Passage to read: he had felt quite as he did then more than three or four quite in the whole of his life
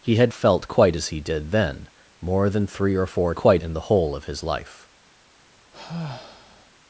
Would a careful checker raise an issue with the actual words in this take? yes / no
no